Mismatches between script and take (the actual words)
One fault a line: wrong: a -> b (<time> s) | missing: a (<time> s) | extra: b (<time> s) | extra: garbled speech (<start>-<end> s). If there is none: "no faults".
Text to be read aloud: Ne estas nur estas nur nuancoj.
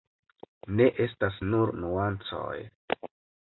missing: estas nur (1.7 s)